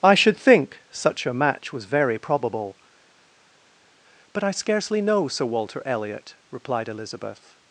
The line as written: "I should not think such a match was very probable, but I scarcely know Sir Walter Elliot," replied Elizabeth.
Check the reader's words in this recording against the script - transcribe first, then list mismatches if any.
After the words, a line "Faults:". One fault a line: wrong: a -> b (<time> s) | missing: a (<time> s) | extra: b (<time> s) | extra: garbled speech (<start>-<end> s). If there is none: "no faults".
"I should think such a match was very probable, but I scarcely know Sir Walter Elliot," replied Elizabeth.
Faults:
missing: not (0.4 s)